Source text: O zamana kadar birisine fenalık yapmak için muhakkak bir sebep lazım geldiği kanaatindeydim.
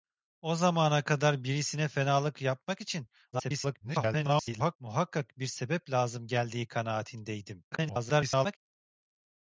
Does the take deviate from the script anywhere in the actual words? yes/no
yes